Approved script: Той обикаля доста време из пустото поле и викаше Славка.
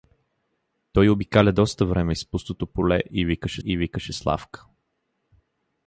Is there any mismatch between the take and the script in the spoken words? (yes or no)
yes